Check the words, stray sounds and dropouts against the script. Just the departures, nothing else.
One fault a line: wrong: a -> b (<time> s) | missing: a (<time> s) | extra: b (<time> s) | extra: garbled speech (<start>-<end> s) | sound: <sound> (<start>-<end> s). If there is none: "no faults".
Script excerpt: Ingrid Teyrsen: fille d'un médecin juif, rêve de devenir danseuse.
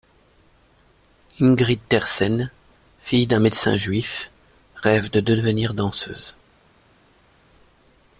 no faults